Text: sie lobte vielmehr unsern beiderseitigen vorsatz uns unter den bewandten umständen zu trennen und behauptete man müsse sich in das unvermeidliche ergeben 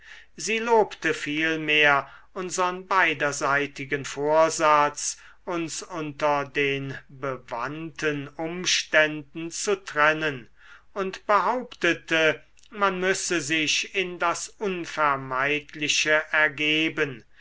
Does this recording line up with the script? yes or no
yes